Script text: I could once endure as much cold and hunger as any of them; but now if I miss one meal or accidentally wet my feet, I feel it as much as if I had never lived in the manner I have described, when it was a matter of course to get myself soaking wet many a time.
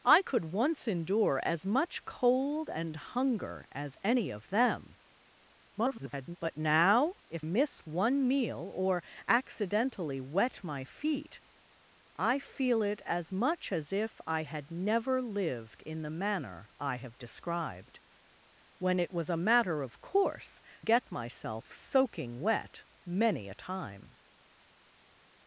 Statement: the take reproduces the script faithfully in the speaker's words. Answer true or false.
false